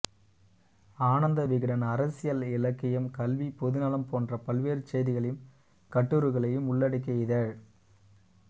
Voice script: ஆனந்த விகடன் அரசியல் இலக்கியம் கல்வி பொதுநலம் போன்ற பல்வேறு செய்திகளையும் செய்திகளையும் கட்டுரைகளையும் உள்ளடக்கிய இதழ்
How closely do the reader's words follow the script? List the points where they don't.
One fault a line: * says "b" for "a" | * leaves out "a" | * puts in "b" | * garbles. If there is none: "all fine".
* leaves out "செய்திகளையும்"